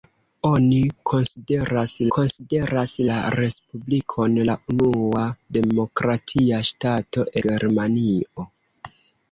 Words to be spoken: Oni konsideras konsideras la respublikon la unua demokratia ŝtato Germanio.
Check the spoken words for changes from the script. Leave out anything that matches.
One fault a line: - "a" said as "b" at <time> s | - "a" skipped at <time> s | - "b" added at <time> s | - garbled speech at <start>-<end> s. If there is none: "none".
none